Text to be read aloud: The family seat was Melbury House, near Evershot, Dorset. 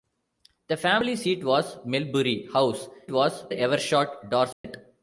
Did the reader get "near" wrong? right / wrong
wrong